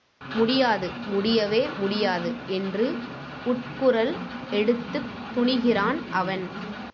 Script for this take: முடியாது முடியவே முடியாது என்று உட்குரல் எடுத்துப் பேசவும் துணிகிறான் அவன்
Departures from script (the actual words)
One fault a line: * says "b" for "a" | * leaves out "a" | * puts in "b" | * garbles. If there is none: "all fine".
* leaves out "பேசவும்"